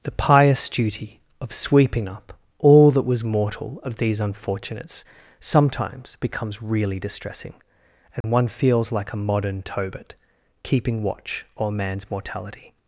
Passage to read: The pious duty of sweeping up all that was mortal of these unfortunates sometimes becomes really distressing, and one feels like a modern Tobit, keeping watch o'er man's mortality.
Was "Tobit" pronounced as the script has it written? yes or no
yes